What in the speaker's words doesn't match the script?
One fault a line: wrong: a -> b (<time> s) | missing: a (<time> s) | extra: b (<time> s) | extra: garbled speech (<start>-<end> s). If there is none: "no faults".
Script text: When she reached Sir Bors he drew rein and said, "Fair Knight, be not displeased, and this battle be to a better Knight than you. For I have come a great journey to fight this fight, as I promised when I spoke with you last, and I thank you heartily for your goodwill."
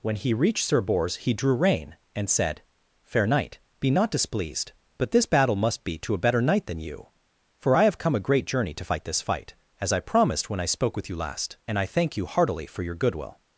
wrong: she -> he (0.1 s)
wrong: and -> but (5.0 s)
extra: must (5.5 s)